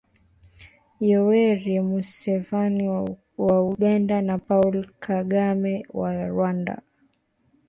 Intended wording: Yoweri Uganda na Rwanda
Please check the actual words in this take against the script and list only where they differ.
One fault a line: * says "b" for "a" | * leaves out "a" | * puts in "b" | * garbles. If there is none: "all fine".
* puts in "Museveni wa"
* puts in "Paul Kagame wa"